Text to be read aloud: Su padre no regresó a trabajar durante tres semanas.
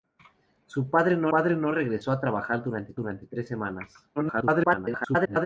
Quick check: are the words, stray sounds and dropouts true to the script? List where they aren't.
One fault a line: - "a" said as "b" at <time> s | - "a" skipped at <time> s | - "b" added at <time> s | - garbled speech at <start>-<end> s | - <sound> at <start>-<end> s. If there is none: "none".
- "padre no" added at 1.3 s
- "durante" added at 2.9 s
- garbled speech at 4.2-5.5 s